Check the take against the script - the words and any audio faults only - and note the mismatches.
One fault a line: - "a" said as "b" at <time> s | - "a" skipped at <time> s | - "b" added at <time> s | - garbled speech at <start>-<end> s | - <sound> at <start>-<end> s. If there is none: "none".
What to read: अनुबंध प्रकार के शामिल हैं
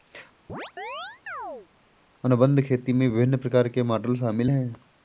- chirp at 0.5-1.7 s
- "खेती में विभिन्न" added at 2.6 s
- "मॉडल" added at 3.8 s